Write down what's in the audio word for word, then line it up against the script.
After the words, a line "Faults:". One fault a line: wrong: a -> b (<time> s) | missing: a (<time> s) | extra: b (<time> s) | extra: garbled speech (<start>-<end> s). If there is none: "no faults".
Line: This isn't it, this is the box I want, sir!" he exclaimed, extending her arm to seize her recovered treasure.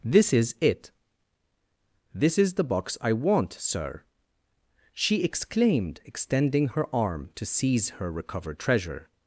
This is it, this is the box I want, sir!" she exclaimed, extending her arm to seize her recovered treasure.
Faults:
wrong: isn't -> is (0.3 s)
wrong: he -> she (4.9 s)